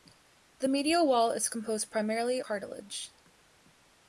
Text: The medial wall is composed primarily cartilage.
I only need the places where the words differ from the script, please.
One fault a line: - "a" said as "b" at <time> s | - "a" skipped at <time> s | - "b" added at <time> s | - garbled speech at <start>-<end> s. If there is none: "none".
none